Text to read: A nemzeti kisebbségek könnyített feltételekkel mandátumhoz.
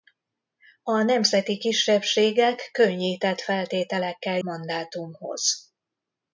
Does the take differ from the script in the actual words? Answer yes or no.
no